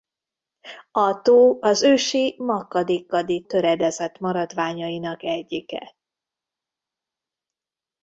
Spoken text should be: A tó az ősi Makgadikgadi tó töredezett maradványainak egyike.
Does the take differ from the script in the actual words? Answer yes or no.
yes